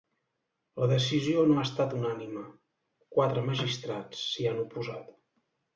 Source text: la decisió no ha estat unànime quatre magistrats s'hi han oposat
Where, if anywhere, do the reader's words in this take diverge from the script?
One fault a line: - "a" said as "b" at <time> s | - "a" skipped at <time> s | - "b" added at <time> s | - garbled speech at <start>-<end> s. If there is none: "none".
none